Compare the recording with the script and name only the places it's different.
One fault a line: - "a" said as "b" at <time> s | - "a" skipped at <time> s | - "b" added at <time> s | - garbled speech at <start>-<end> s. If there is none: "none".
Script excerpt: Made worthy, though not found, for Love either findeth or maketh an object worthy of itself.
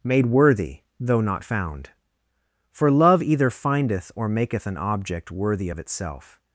none